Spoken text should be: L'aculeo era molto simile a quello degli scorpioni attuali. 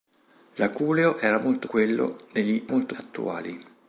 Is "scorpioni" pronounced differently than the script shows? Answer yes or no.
yes